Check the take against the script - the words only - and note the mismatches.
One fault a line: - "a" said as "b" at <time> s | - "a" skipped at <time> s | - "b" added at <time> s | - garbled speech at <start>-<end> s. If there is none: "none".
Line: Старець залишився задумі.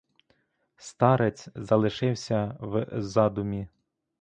- "в" added at 2.6 s